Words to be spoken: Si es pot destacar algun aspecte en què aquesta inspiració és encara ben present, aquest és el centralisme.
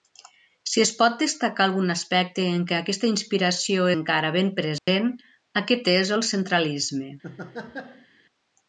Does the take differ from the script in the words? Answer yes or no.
yes